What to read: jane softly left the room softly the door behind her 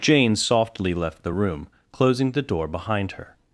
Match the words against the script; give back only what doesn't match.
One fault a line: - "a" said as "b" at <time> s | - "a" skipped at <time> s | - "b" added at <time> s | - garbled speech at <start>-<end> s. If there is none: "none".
- "softly" said as "closing" at 1.9 s